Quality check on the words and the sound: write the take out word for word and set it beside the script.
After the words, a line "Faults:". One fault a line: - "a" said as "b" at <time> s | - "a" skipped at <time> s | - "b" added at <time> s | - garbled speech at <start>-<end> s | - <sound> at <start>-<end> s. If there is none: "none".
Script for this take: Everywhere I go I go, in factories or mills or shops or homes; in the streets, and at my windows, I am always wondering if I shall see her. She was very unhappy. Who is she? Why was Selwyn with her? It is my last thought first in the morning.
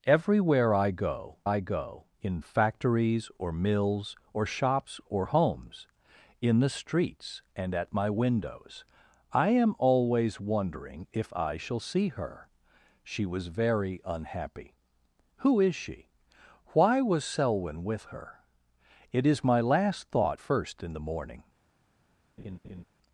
Everywhere I go I go, in factories or mills or shops or homes; in the streets, and at my windows, I am always wondering if I shall see her. She was very unhappy. Who is she? Why was Selwyn with her? It is my last thought first in the morning.
Faults:
- laugh at 22.4-22.8 s